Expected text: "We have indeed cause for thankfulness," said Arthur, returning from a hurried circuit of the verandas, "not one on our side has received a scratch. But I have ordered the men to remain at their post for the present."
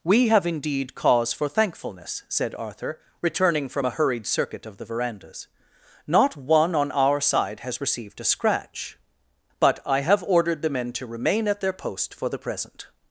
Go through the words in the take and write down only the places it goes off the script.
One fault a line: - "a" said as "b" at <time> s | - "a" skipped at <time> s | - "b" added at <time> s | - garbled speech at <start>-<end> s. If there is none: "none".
none